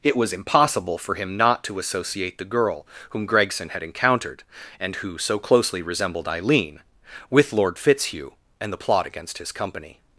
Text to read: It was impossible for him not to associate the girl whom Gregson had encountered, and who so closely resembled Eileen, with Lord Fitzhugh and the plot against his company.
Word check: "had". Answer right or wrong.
right